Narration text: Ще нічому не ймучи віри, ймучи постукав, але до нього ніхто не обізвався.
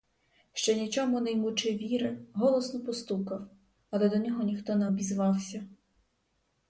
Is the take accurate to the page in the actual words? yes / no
no